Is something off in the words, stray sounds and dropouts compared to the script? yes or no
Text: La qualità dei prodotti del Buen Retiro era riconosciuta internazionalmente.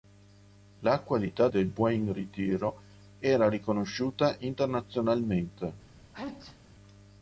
yes